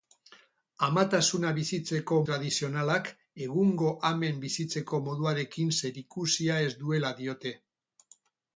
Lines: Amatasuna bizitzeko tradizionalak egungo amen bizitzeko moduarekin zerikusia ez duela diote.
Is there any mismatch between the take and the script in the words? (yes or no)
no